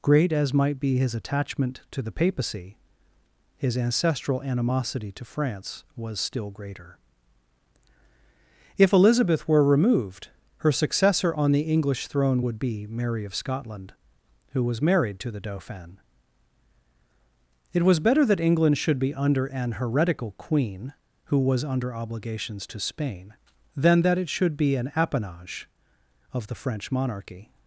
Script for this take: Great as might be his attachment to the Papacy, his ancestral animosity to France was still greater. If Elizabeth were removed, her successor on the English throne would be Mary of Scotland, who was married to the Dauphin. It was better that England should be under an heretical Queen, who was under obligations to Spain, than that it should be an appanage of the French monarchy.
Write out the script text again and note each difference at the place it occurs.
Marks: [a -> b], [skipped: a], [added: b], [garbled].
Great as might be his attachment to the Papacy, his ancestral animosity to France was still greater. If Elizabeth were removed, her successor on the English throne would be Mary of Scotland, who was married to the Dauphin. It was better that England should be under an heretical Queen, who was under obligations to Spain, than that it should be an appanage of the French monarchy.